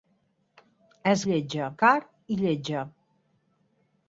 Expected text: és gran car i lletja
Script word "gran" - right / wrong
wrong